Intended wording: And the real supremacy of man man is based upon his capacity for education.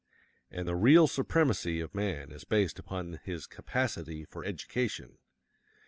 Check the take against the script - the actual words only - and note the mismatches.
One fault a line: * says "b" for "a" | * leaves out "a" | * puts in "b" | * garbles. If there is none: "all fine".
* leaves out "man"